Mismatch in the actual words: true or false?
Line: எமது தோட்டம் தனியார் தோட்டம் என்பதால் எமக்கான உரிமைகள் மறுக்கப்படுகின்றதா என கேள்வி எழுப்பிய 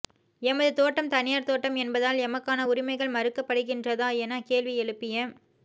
false